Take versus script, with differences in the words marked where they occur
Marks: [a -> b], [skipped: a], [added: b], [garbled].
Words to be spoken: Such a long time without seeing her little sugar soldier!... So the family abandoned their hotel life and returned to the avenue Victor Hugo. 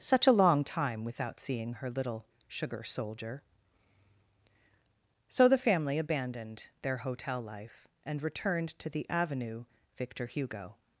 Such a long time without seeing her little sugar soldier!... So the family abandoned their hotel life and returned to the avenue Victor Hugo.